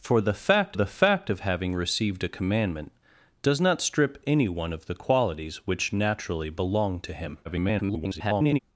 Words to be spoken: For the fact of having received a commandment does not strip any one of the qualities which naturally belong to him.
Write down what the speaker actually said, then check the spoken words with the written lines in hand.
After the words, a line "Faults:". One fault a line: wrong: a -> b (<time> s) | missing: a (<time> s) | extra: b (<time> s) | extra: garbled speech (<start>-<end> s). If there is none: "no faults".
For the fact the fact of having received a commandment does not strip any one of the qualities which naturally belong to him. [garbled]
Faults:
extra: the fact (0.7 s)
extra: garbled speech (7.4-8.6 s)